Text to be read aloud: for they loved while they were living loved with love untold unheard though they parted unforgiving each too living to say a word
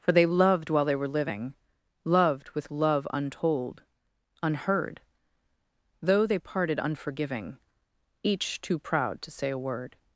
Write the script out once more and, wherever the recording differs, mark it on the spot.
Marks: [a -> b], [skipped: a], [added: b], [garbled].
for they loved while they were living loved with love untold unheard though they parted unforgiving each too [living -> proud] to say a word